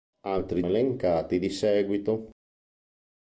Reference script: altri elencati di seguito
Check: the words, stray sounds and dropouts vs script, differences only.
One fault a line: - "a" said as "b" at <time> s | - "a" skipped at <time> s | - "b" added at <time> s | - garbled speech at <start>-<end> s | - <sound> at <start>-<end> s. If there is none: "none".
none